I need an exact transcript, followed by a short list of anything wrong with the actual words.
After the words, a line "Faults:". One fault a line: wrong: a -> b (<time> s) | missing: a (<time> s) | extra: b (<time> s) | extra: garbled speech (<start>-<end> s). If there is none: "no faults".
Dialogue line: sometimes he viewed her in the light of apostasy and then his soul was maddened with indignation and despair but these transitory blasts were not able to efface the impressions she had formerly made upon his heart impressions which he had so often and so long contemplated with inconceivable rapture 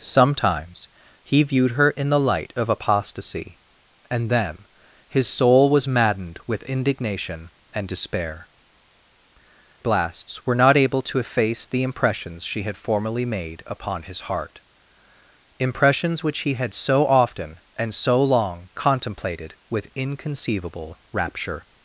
sometimes he viewed her in the light of apostasy and then his soul was maddened with indignation and despair blasts were not able to efface the impressions she had formerly made upon his heart impressions which he had so often and so long contemplated with inconceivable rapture
Faults:
missing: but these transitory (8.5 s)